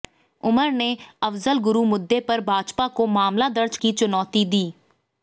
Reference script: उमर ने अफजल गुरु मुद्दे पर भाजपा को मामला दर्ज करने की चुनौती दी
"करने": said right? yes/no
no